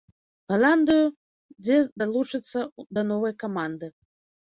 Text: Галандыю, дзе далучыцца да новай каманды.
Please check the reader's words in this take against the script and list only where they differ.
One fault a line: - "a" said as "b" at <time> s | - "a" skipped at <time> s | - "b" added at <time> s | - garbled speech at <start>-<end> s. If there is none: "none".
none